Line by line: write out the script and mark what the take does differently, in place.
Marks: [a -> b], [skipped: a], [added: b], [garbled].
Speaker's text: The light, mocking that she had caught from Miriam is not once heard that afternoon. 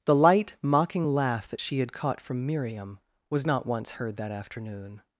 The light, mocking [added: laugh] that she had caught from Miriam [is -> was] not once heard that afternoon.